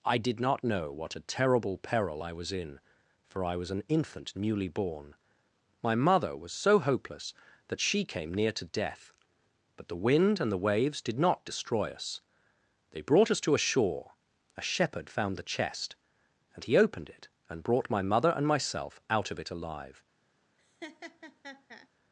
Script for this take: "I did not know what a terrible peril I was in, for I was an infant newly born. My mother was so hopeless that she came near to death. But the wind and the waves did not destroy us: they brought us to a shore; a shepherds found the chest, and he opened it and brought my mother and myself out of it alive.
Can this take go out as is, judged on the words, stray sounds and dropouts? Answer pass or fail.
fail